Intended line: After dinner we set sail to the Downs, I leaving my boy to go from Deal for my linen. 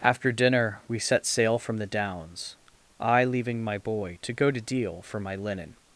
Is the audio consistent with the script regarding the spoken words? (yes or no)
no